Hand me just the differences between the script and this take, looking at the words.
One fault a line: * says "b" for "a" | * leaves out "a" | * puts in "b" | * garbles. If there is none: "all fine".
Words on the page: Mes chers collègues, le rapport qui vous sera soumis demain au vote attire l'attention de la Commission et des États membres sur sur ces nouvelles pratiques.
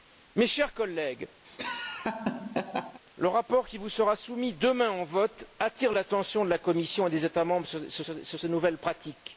all fine